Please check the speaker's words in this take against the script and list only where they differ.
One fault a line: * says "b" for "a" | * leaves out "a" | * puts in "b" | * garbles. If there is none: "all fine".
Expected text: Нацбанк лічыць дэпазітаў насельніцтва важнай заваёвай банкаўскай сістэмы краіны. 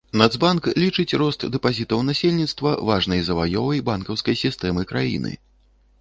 * puts in "рост"